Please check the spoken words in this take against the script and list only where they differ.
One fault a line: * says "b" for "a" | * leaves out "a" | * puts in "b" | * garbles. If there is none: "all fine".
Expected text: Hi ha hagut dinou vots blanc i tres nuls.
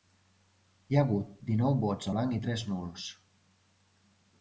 all fine